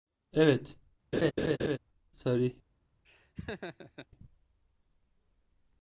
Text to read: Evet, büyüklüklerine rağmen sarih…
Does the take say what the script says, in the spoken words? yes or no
no